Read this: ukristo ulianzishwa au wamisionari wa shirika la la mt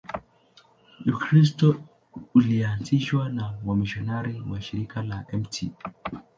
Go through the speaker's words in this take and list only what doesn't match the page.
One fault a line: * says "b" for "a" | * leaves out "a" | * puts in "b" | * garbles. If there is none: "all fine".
* says "na" for "au"
* leaves out "la"